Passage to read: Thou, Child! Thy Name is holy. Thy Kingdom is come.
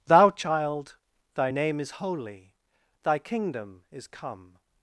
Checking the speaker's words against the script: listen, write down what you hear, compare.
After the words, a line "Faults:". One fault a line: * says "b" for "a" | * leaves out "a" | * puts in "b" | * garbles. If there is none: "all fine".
Thou, Child! Thy Name is holy. Thy Kingdom is come.
Faults:
all fine